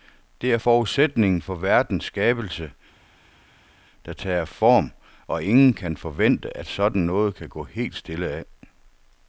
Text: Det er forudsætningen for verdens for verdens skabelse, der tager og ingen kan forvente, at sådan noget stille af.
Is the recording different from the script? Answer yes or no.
yes